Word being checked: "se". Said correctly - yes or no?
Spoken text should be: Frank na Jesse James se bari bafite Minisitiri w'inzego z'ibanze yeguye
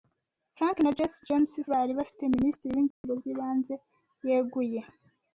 no